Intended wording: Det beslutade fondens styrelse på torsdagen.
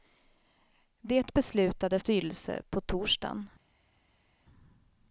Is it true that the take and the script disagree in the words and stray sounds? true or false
true